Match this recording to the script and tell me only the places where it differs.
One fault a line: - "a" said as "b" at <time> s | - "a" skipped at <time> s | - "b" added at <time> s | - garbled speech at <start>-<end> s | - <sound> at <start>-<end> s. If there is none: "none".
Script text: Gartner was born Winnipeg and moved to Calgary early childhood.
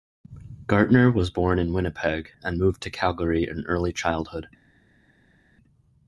- "in" added at 1.6 s
- "in" added at 3.4 s